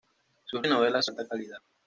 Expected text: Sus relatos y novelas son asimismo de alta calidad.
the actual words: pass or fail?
fail